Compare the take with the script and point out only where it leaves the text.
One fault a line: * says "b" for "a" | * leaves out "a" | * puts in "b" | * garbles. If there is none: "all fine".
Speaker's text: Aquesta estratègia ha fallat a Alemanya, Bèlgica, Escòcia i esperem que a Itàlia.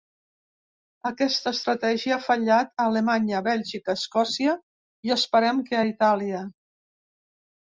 all fine